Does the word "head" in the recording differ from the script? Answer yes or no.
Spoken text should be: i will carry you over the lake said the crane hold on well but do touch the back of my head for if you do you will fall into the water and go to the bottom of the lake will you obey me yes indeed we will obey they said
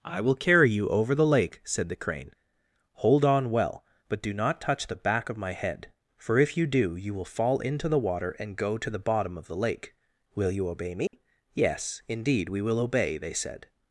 no